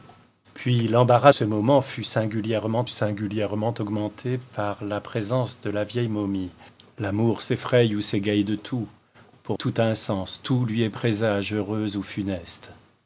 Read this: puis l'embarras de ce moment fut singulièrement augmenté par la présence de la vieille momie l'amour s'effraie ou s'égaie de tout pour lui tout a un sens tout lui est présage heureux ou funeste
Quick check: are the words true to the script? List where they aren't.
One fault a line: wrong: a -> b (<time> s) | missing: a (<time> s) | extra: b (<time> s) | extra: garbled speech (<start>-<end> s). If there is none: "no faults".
missing: de (1.3 s)
extra: singulièrement (2.9 s)
missing: lui (9.6 s)